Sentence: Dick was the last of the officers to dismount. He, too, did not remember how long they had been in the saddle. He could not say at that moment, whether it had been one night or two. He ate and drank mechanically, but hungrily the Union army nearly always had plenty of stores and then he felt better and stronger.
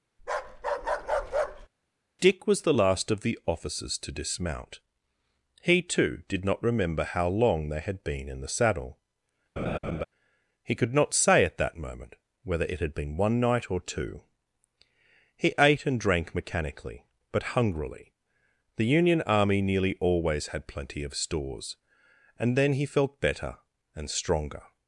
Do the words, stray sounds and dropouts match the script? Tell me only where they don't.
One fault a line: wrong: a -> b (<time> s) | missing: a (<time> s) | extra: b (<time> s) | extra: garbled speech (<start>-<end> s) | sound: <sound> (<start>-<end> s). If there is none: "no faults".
sound: bark (0.2-1.7 s)
sound: laugh (9.6-10.0 s)